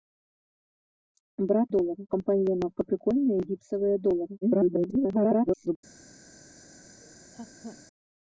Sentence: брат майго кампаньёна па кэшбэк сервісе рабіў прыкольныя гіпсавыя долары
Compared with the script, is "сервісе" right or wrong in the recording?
wrong